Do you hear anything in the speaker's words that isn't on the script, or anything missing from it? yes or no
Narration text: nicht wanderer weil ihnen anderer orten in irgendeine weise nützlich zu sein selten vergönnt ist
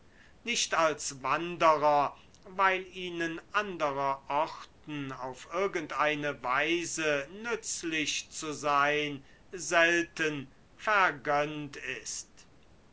yes